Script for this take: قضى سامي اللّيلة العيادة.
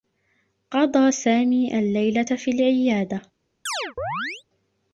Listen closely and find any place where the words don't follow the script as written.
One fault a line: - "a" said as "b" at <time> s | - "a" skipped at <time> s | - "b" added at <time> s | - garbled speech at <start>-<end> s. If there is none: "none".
- "في" added at 2.2 s